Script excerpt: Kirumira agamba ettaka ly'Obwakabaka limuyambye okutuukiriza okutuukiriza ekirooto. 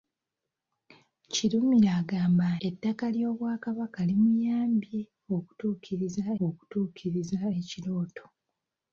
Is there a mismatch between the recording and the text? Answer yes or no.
no